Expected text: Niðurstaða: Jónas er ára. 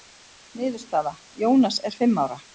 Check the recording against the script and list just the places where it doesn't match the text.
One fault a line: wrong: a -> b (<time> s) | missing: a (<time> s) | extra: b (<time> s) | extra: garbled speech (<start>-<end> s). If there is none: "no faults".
extra: fimm (2.0 s)